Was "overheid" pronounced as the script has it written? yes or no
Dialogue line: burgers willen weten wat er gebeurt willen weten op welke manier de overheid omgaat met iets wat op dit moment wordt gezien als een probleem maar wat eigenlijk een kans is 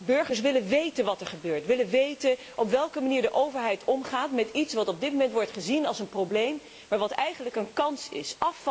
yes